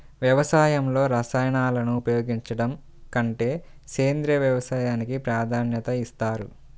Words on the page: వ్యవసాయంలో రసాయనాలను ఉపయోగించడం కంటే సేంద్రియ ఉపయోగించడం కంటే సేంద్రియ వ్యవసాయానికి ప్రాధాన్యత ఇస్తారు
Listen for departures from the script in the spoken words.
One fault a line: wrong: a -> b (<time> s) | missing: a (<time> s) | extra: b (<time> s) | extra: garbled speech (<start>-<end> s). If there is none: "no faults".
missing: ఉపయోగించడం కంటే సేంద్రియ (4.4 s)